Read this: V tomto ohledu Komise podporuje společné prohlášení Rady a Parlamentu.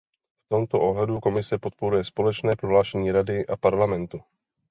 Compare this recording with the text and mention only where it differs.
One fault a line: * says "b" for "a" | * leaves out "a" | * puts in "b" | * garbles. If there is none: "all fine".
all fine